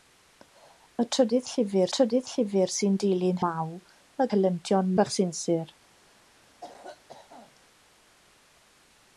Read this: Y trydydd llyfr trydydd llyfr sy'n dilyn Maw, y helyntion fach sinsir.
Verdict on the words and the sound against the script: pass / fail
fail